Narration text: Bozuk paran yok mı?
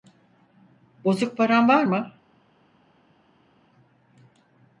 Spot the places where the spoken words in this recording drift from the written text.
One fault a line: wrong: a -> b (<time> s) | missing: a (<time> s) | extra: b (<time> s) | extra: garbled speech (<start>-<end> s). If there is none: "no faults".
wrong: yok -> var (1.7 s)